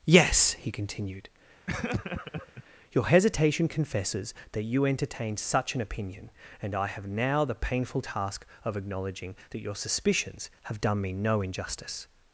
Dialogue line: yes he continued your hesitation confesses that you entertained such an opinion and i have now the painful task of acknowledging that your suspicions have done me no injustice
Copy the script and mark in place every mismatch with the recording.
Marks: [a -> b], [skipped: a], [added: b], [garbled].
yes he continued your hesitation confesses that you entertained such an opinion and i have now the painful task of acknowledging that your suspicions have done me no injustice